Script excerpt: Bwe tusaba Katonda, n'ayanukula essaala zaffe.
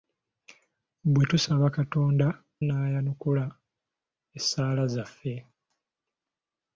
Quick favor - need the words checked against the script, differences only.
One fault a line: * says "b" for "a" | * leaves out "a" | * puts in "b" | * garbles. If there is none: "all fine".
all fine